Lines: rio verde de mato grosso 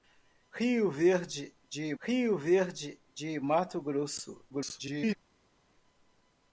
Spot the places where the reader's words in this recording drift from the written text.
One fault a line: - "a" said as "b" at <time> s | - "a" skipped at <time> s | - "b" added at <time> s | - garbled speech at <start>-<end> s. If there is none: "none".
- "rio verde de" added at 2.0 s
- garbled speech at 4.5-5.2 s